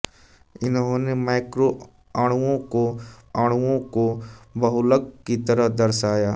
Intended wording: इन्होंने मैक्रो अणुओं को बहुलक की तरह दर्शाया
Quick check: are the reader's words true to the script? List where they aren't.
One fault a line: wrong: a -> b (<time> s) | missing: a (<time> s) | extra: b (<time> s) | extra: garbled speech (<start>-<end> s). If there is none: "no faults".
extra: अणुओं को (3.3 s)